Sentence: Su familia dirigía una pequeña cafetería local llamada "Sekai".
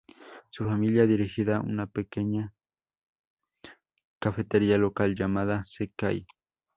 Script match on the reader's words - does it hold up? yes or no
yes